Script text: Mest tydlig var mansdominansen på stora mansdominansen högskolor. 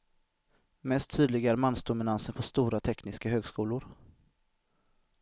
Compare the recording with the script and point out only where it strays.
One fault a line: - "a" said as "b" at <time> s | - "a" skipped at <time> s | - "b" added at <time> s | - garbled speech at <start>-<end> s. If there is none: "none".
- "var" said as "är" at 1.5 s
- "mansdominansen" said as "tekniska" at 2.8 s